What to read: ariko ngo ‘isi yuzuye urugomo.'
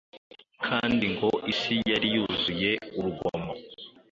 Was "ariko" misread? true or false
true